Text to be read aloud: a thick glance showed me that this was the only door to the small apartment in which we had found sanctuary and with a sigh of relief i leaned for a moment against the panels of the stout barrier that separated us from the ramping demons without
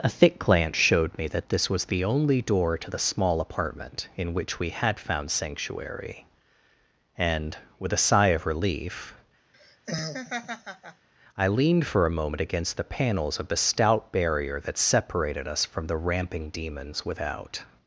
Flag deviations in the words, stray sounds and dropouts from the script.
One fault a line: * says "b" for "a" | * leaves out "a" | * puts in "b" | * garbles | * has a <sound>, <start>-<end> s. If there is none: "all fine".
* has a laugh, 9.5-11.1 s